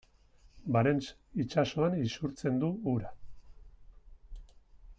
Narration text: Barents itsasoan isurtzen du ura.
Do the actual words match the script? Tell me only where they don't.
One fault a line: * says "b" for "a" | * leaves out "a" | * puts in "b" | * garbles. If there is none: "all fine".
all fine